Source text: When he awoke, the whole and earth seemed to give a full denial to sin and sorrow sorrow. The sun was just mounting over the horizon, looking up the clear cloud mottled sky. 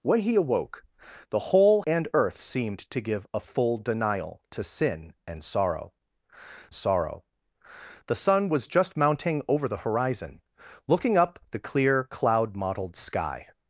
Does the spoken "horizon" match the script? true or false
true